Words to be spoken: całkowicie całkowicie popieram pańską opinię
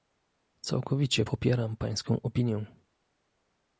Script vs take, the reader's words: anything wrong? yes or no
yes